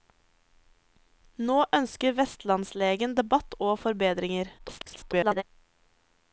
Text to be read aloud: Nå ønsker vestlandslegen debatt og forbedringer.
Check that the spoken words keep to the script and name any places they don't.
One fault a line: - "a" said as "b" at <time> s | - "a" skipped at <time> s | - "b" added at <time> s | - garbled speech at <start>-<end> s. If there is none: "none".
- garbled speech at 4.6-5.4 s